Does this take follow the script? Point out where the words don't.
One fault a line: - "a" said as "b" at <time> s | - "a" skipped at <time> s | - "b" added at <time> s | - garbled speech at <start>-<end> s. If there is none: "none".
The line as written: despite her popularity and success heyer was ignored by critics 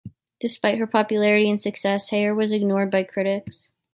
none